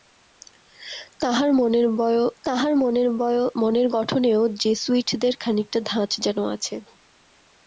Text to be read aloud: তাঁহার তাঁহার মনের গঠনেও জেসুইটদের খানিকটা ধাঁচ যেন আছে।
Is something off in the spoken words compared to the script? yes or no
no